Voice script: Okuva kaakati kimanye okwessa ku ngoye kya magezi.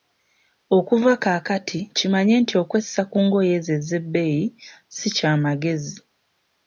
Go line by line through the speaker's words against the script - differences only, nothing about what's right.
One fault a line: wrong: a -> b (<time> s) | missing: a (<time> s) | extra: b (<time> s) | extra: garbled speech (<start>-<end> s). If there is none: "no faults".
extra: nti (2.4 s)
extra: ezo ezebbeeyi si (3.6 s)